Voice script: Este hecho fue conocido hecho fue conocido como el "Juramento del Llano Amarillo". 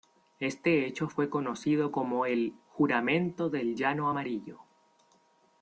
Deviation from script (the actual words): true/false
true